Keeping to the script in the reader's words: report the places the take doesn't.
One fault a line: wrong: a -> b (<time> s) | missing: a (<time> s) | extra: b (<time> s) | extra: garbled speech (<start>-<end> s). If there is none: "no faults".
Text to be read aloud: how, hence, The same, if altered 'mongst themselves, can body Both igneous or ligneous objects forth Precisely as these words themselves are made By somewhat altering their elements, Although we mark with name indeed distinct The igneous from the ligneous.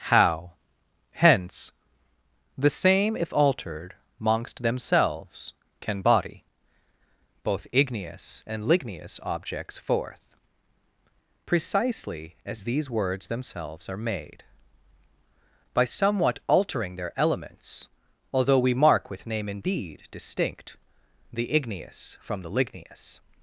wrong: or -> and (8.5 s)